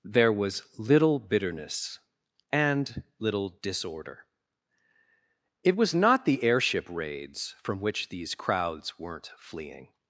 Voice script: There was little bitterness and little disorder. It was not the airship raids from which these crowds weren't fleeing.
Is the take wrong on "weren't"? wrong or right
right